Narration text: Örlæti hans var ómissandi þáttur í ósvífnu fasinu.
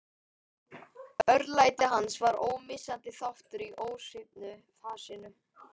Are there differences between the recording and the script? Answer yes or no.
no